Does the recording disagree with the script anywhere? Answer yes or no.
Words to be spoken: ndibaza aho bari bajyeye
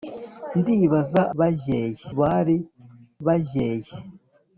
yes